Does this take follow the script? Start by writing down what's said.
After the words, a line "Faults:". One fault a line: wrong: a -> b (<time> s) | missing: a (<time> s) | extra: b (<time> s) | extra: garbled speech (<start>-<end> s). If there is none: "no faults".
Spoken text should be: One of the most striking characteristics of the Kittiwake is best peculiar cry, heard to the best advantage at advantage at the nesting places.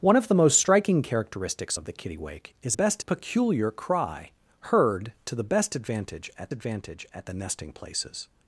One of the most striking characteristics of the Kittiwake is best peculiar cry, heard to the best advantage at advantage at the nesting places.
Faults:
no faults